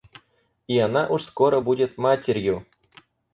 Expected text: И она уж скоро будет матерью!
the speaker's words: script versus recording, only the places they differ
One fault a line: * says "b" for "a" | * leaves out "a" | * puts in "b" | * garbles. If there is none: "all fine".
all fine